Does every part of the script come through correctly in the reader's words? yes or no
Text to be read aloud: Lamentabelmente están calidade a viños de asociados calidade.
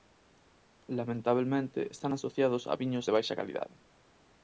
no